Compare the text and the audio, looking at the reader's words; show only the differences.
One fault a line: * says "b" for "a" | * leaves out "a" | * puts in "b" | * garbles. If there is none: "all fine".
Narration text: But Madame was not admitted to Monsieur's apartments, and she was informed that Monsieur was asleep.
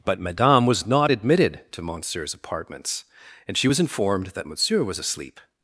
all fine